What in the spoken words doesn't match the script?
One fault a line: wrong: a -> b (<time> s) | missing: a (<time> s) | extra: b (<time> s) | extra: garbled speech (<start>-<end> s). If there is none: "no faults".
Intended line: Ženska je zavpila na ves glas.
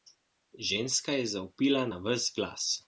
no faults